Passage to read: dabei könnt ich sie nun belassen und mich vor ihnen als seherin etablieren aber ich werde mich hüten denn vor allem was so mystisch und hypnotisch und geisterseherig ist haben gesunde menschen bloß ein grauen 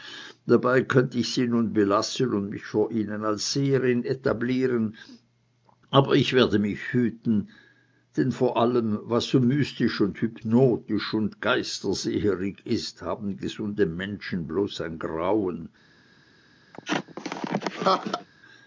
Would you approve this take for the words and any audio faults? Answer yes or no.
no